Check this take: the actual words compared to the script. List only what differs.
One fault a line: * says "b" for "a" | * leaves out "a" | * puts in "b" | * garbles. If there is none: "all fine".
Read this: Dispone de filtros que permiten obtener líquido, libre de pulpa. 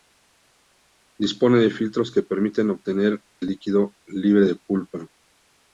all fine